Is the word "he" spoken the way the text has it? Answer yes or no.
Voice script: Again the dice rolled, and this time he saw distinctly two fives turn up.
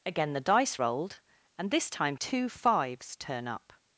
no